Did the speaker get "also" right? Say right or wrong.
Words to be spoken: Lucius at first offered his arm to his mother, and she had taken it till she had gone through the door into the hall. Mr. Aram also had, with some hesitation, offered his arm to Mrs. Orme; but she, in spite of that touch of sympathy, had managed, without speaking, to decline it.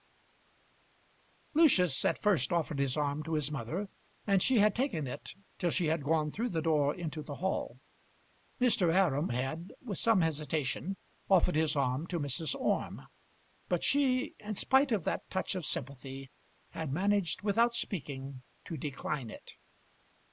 wrong